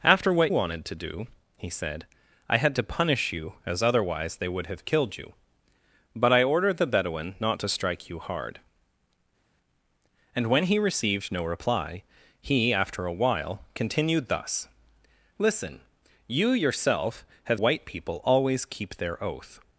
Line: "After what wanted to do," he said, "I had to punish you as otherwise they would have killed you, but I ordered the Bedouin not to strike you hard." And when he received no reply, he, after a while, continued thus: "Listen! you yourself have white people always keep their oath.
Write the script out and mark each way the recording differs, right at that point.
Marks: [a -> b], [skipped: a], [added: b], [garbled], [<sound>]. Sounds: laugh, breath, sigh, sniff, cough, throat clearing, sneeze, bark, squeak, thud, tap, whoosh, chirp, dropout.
"After what wanted to do," he said, "I had to punish you as otherwise they would have killed you, but I ordered the Bedouin not to strike you hard." And when he received no reply, he, after a while, continued thus: "Listen! you yourself have white people always keep their oath.